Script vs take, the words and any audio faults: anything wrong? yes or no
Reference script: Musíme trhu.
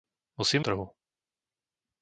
no